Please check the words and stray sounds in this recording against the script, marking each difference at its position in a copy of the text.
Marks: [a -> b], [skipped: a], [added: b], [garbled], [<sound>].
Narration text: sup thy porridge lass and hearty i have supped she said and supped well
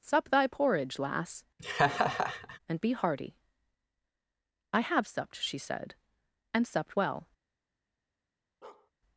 sup thy porridge lass [laugh] and [added: be] hearty i have supped she said and supped well [bark]